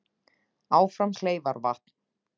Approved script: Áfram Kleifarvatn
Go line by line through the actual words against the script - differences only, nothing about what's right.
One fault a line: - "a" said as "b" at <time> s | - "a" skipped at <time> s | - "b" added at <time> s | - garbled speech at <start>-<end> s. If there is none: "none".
none